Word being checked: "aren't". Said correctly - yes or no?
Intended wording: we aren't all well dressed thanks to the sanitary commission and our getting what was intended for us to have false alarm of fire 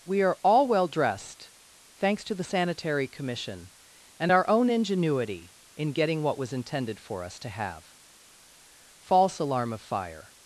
no